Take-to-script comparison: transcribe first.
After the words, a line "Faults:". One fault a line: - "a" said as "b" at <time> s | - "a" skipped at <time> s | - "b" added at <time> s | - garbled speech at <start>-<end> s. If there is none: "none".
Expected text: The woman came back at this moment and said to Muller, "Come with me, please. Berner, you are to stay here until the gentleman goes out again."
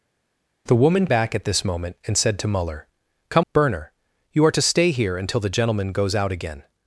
The woman back at this moment and said to Muller, "Come. Berner, you are to stay here until the gentleman goes out again."
Faults:
- "came" skipped at 1.1 s
- "with me please" skipped at 3.5 s